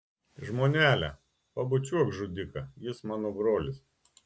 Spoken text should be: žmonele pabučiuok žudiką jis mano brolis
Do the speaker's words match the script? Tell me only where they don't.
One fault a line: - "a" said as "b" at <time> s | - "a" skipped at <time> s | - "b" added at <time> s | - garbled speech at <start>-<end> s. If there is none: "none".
none